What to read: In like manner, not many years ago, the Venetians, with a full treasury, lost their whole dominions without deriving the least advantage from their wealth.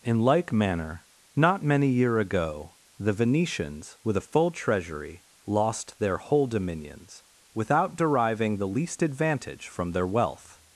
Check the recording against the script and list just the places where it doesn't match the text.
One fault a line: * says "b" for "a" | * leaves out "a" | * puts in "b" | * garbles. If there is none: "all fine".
* says "year" for "years"